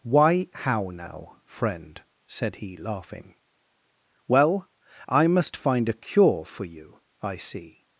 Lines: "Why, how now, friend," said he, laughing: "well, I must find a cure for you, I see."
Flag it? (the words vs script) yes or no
no